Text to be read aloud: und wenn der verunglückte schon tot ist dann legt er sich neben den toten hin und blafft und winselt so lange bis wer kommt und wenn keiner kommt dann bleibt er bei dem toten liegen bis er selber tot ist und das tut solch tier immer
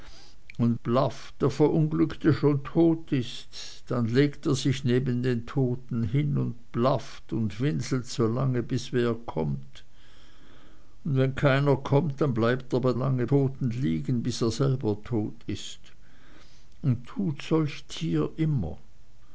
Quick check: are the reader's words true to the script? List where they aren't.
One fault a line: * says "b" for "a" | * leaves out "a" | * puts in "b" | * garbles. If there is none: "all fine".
* says "blafft" for "wenn"
* says "lange" for "dem"
* leaves out "das"